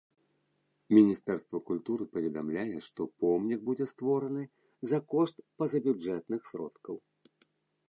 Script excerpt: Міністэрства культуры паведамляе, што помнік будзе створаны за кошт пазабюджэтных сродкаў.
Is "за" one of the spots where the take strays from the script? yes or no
no